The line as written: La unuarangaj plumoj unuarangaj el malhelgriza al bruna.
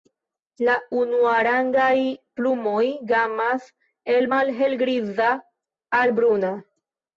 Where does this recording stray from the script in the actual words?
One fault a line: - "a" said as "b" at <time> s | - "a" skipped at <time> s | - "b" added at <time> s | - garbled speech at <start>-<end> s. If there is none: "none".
- "unuarangaj" said as "gamas" at 3.1 s